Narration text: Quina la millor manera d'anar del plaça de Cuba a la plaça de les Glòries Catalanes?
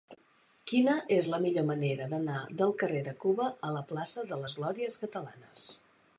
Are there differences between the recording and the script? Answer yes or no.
yes